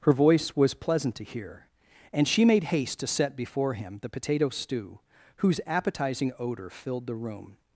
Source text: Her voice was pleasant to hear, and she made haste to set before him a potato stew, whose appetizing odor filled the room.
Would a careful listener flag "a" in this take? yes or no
yes